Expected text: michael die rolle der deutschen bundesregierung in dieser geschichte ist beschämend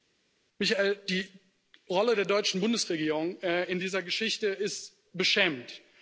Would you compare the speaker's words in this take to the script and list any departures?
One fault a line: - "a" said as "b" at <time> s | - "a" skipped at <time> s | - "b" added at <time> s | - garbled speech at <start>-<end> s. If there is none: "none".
none